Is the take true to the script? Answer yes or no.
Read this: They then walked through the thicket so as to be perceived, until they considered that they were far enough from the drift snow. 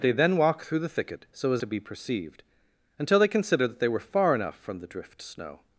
yes